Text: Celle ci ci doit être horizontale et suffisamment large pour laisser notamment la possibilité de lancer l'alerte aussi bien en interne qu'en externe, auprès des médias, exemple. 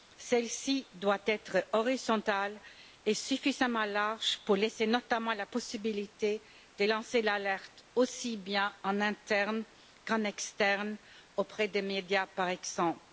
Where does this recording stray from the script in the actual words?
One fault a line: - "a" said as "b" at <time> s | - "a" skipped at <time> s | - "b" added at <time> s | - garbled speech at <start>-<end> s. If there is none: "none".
- "ci" skipped at 0.9 s
- "par" added at 12.3 s